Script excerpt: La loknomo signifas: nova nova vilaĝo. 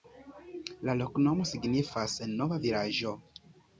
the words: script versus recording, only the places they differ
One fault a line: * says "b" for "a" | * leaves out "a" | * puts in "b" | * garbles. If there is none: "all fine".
* leaves out "nova"